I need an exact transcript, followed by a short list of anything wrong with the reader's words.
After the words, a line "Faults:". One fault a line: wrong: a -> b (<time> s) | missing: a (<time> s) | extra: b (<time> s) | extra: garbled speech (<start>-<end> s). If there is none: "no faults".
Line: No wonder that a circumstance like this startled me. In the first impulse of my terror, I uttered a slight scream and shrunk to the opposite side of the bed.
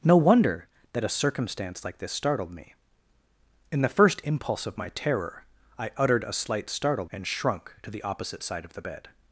No wonder that a circumstance like this startled me. In the first impulse of my terror, I uttered a slight startled and shrunk to the opposite side of the bed.
Faults:
wrong: scream -> startled (6.7 s)